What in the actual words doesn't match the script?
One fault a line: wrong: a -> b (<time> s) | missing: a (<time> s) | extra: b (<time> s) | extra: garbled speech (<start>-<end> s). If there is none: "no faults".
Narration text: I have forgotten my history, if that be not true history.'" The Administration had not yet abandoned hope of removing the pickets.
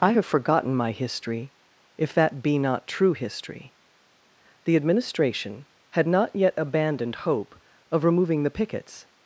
no faults